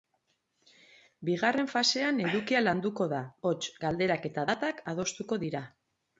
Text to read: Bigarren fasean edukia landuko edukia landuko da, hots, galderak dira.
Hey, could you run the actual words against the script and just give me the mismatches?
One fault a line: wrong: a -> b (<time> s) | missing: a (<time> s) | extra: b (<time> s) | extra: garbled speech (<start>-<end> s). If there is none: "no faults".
missing: edukia landuko (3.1 s)
extra: eta datak adostuko (4.3 s)